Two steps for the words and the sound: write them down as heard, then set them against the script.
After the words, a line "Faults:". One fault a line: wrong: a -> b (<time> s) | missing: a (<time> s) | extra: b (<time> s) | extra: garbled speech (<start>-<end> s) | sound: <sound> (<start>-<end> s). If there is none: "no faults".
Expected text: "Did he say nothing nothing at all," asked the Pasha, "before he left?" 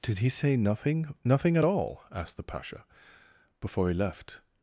"Did he say nothing nothing at all," asked the Pasha, "before he left?"
Faults:
no faults